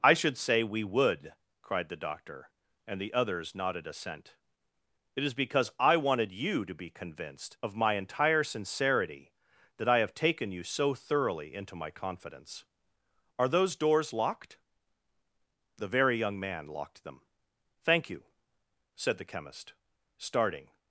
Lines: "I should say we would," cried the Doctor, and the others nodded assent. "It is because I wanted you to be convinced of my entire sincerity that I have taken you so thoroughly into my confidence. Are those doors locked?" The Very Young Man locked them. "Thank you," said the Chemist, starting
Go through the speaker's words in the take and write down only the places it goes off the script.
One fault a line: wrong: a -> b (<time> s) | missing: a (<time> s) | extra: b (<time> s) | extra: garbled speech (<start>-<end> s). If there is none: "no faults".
no faults